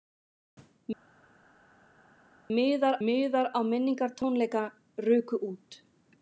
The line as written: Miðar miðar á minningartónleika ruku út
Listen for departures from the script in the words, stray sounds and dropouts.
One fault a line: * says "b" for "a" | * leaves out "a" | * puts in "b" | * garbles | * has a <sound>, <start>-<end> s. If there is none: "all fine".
all fine